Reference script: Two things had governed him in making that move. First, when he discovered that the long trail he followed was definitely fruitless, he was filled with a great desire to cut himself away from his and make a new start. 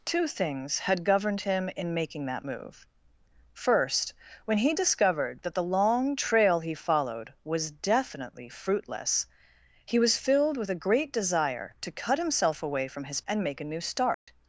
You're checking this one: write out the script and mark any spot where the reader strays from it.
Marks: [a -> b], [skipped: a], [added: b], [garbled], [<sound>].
Two things had governed him in making that move. First, when he discovered that the long trail he followed was definitely fruitless, he was filled with a great desire to cut himself away from his and make a new start. [dropout]